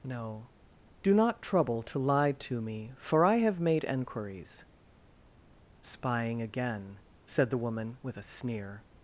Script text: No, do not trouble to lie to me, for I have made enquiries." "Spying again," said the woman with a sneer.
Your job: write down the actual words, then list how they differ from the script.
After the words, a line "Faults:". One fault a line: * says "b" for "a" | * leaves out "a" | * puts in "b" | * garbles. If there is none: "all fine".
No, do not trouble to lie to me, for I have made enquiries." "Spying again," said the woman with a sneer.
Faults:
all fine